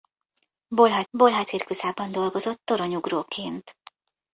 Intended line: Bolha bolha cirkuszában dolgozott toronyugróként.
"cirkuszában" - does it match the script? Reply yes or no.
yes